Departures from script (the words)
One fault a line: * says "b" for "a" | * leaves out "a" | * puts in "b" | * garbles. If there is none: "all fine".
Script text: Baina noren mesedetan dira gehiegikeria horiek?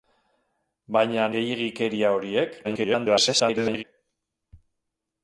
* leaves out "noren mesedetan dira"
* garbles